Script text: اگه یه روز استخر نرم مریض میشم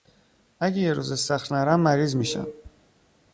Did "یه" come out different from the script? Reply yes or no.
no